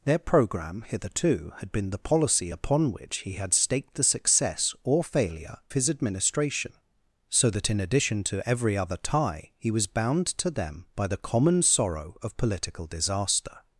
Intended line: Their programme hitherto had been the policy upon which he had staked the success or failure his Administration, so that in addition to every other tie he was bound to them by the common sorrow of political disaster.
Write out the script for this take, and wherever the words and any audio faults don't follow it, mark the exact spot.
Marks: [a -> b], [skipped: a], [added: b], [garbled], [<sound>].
Their programme hitherto had been the policy upon which he had staked the success or failure his Administration, so that in addition to every other tie he was bound to them by the common sorrow of political disaster.